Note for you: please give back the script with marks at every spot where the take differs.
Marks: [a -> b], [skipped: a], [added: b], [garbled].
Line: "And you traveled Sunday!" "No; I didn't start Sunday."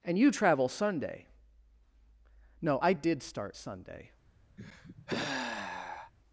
"And you [traveled -> travel] Sunday!" "No; I [didn't -> did] start Sunday."